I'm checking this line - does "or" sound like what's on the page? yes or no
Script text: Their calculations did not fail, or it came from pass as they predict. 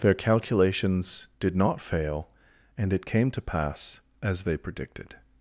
no